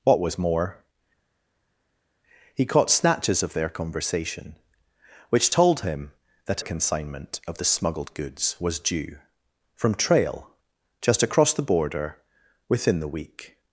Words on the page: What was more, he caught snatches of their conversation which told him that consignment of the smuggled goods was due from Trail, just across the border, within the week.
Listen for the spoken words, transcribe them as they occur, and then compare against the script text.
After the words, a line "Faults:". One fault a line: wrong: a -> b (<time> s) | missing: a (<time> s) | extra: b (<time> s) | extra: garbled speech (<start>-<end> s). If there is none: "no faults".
What was more, he caught snatches of their conversation which told him that consignment of the smuggled goods was due from Trail, just across the border, within the week.
Faults:
no faults